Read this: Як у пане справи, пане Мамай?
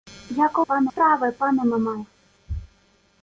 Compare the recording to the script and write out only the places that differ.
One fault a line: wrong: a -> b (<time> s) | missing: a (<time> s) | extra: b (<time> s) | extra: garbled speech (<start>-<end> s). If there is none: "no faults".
no faults